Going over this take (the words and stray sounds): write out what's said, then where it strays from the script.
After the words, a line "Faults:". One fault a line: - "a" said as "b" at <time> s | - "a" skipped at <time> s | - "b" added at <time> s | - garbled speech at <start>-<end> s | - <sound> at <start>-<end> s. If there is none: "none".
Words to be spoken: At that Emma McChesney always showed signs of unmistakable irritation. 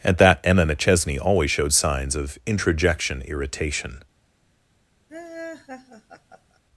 At that Emma McChesney always showed signs of introjection irritation.
Faults:
- "unmistakable" said as "introjection" at 2.5 s
- laugh at 5.1-6.6 s